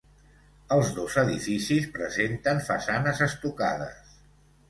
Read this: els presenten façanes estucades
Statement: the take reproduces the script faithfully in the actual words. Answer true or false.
false